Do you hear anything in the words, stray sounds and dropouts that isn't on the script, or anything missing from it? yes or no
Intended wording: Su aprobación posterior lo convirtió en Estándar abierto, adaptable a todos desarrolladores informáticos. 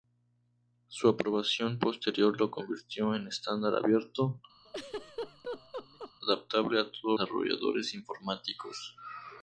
yes